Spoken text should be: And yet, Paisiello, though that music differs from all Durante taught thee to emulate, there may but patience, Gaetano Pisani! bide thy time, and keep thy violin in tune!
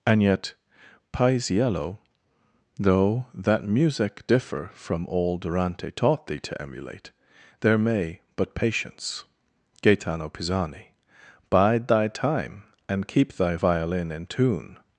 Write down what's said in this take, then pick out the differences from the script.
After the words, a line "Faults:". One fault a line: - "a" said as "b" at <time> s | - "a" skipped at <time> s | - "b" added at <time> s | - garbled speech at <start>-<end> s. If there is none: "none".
And yet, Paisiello, though that music differ from all Durante taught thee to emulate, there may but patience, Gaetano Pisani! bide thy time, and keep thy violin in tune!
Faults:
- "differs" said as "differ" at 4.3 s